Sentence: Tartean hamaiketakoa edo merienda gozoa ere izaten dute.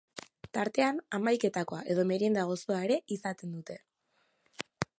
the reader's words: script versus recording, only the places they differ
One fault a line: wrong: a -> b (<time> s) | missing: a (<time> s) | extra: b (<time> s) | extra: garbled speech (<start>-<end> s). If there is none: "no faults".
no faults